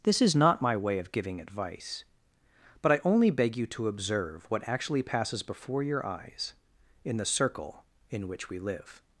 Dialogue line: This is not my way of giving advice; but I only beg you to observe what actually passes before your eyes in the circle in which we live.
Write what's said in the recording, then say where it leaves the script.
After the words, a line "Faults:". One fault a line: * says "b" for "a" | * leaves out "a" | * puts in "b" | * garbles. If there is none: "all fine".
This is not my way of giving advice; but I only beg you to observe what actually passes before your eyes in the circle in which we live.
Faults:
all fine